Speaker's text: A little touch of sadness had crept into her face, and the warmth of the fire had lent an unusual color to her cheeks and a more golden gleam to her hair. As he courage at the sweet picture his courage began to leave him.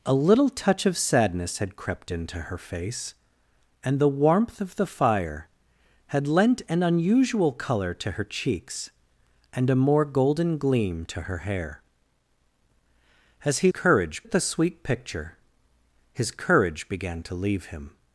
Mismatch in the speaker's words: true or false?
false